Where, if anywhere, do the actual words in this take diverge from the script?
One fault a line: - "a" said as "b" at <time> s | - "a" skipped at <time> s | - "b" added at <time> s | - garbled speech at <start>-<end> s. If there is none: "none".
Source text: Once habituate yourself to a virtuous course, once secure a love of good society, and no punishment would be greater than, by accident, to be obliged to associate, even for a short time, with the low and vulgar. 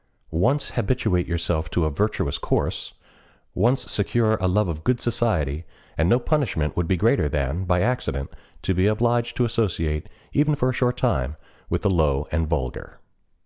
none